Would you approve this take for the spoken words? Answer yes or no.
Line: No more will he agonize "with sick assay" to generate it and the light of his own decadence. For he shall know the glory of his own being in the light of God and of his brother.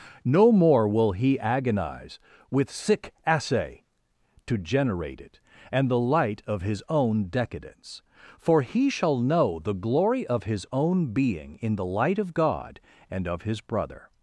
yes